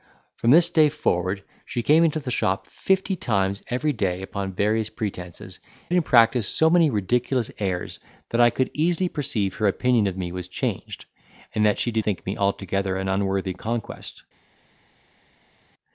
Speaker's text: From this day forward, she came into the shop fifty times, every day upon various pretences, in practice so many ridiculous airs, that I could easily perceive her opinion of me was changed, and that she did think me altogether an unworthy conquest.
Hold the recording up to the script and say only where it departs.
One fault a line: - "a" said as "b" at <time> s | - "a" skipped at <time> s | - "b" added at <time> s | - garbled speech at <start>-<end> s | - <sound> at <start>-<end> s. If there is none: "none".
none